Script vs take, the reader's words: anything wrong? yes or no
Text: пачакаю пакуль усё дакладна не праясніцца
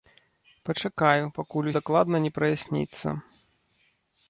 yes